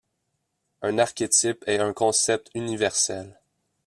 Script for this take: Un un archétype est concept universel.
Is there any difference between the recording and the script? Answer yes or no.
yes